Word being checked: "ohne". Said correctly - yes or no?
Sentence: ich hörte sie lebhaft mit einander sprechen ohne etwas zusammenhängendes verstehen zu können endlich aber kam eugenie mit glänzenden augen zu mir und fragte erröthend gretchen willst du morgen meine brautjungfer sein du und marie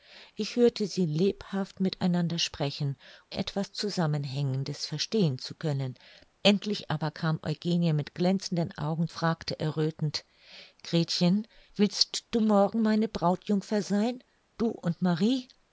no